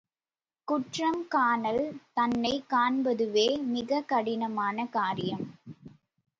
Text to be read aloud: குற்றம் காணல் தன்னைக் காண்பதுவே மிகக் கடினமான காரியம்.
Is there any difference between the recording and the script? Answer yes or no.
no